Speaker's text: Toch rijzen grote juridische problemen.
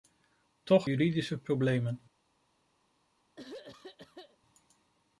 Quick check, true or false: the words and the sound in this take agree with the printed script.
false